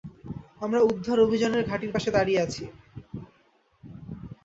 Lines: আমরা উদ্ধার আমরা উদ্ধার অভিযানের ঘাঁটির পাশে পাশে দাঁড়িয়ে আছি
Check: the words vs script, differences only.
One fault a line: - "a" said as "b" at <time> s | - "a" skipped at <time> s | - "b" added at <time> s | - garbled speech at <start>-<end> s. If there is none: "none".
- "আমরা উদ্ধার" skipped at 1.2 s
- "পাশে" skipped at 2.1 s